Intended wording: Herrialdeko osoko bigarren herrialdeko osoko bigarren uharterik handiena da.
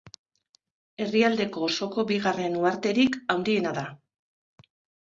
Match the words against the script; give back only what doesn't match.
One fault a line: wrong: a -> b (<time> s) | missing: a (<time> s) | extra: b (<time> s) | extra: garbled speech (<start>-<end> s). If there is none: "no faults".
missing: herrialdeko osoko bigarren (2.6 s)